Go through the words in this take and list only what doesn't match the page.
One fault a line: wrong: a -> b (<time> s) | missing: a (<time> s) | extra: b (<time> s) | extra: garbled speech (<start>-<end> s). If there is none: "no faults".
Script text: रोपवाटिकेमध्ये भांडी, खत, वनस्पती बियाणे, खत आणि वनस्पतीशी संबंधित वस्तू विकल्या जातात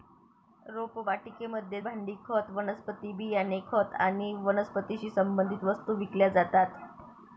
no faults